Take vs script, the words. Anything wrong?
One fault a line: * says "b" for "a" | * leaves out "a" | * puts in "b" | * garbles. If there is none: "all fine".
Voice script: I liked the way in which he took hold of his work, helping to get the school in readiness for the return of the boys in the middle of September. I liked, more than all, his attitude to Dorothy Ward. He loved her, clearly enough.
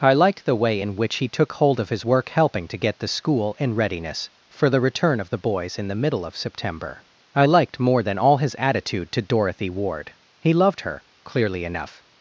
all fine